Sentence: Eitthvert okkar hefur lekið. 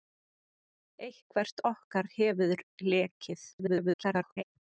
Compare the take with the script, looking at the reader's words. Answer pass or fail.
fail